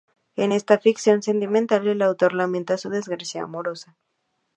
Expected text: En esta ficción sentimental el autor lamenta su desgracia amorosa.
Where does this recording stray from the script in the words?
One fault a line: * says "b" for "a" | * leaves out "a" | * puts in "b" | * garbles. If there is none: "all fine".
all fine